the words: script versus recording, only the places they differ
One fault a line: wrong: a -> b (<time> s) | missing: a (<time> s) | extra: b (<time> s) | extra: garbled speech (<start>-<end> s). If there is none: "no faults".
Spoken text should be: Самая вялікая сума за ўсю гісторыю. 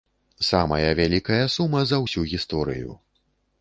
no faults